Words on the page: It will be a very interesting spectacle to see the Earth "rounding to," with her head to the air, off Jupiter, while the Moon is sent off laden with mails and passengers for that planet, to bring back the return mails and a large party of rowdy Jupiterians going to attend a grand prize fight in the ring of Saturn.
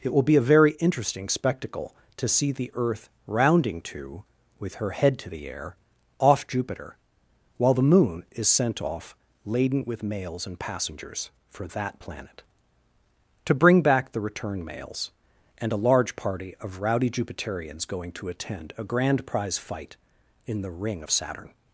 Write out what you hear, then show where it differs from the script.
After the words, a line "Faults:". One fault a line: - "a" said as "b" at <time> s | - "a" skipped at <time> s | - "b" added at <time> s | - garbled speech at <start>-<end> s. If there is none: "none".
It will be a very interesting spectacle to see the Earth "rounding to," with her head to the air, off Jupiter, while the Moon is sent off laden with mails and passengers for that planet, to bring back the return mails and a large party of rowdy Jupiterians going to attend a grand prize fight in the ring of Saturn.
Faults:
none